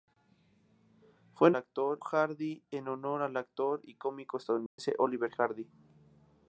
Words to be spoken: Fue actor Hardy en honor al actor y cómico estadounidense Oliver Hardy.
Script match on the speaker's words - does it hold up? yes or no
yes